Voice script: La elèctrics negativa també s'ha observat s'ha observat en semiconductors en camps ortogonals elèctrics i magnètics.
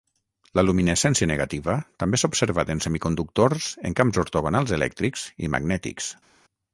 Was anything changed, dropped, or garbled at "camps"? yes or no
no